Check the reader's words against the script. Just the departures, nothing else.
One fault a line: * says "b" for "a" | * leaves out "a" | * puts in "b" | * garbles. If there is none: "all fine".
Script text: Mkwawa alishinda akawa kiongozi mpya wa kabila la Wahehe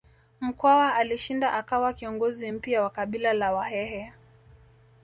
all fine